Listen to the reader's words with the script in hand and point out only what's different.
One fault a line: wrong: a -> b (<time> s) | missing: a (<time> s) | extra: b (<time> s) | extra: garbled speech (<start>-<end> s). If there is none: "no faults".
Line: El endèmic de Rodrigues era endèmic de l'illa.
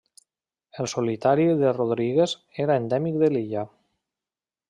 wrong: endèmic -> solitari (0.9 s)